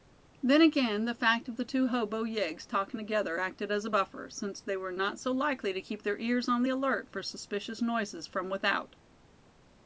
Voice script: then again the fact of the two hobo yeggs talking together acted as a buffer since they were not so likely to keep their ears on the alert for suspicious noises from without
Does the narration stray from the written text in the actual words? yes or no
no